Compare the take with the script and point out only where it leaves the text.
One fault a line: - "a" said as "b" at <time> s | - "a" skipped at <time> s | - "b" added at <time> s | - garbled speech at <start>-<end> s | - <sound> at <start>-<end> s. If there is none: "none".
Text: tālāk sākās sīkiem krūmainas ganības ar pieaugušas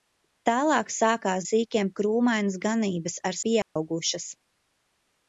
- dropout at 3.6-3.8 s